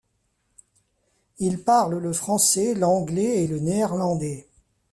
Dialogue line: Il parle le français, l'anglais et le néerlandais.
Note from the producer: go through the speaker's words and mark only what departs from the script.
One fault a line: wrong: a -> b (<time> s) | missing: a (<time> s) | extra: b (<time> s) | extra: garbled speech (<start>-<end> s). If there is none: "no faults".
no faults